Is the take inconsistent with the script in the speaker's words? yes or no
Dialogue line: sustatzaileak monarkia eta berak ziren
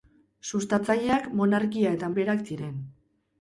no